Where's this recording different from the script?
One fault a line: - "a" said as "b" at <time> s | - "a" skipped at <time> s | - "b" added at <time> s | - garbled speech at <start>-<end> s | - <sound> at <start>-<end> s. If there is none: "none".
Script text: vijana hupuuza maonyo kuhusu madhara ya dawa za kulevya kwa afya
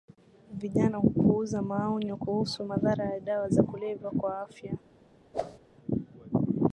- whoosh at 5.3-5.6 s